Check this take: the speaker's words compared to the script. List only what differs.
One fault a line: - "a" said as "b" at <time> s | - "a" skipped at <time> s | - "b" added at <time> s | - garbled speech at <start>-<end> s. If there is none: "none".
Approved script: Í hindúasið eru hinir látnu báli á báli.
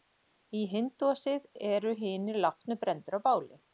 - "báli" said as "brenndir" at 2.9 s